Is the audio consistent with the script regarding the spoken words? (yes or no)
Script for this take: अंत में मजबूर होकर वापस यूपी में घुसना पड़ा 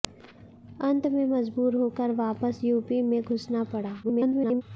no